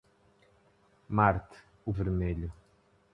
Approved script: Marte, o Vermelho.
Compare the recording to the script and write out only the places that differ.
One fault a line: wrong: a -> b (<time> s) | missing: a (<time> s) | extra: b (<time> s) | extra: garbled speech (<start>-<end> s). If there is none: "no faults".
no faults